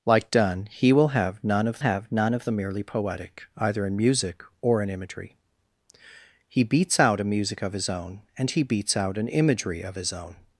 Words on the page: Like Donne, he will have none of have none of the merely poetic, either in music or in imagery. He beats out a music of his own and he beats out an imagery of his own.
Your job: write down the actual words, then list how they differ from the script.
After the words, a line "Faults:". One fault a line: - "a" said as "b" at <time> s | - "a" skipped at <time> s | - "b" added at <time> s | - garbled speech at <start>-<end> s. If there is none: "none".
Like Donne, he will have none of have none of the merely poetic, either in music or in imagery. He beats out a music of his own and he beats out an imagery of his own.
Faults:
none